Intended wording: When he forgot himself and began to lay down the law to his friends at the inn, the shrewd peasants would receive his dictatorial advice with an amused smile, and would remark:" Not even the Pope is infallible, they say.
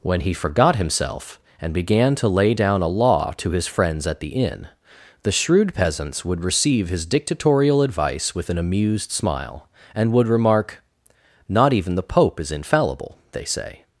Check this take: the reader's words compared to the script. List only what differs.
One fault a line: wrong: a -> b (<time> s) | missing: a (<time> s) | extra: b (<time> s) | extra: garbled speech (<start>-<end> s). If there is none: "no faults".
wrong: the -> a (2.8 s)